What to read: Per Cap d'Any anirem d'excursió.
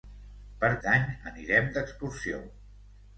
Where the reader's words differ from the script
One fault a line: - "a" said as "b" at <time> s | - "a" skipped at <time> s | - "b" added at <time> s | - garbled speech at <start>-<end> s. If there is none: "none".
- "Cap" skipped at 0.7 s